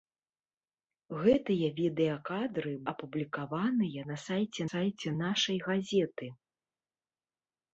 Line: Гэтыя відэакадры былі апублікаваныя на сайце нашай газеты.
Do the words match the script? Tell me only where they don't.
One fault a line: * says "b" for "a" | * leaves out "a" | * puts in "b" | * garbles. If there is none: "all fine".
* leaves out "былі"
* puts in "сайце"